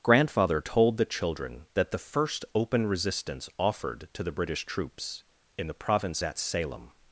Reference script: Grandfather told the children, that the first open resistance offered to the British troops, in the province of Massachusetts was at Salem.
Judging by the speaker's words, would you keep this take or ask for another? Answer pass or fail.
fail